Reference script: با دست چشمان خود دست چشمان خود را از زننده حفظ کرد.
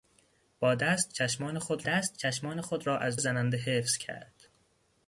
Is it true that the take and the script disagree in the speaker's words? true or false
false